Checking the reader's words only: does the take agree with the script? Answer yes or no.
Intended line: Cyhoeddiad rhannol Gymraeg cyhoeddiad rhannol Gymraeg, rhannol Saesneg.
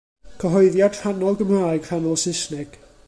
no